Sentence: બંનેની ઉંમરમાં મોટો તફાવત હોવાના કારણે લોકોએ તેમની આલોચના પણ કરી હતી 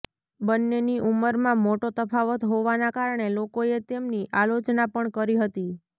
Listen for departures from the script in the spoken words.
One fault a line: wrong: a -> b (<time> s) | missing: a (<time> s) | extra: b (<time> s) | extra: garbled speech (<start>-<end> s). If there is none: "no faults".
no faults